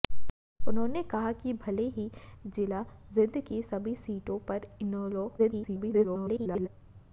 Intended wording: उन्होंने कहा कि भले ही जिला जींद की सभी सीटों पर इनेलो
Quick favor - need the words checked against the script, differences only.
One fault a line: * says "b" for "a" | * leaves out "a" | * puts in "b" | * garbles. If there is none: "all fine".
* garbles